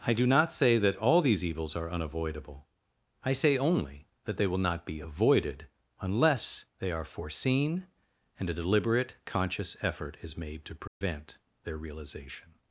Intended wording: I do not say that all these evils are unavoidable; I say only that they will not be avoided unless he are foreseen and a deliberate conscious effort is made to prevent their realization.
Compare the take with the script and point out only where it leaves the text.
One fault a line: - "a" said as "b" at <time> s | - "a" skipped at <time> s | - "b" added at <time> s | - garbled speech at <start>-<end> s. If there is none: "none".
- "he" said as "they" at 6.8 s